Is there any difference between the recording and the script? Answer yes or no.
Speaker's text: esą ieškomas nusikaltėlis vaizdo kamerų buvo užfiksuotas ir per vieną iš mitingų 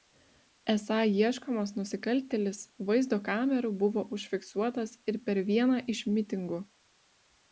no